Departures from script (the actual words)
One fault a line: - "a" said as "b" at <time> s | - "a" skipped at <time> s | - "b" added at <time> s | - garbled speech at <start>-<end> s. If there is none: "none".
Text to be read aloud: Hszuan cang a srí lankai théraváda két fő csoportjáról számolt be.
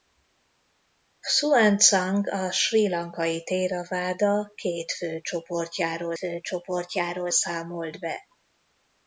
- "fő csoportjáról" added at 6.1 s